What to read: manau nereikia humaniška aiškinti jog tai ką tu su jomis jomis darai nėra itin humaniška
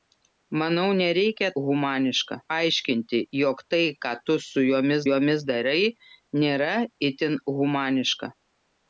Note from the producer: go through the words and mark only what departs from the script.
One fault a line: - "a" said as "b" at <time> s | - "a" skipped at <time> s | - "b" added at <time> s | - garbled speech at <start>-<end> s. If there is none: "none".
none